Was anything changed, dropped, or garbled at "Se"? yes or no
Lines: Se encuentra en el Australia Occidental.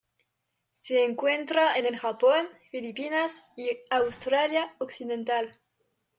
no